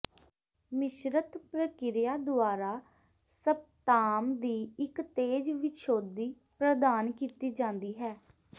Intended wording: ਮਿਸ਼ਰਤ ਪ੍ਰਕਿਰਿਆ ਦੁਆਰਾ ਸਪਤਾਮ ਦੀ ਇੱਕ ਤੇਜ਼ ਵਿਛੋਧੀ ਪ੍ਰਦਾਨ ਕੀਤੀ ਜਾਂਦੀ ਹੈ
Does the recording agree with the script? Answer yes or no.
yes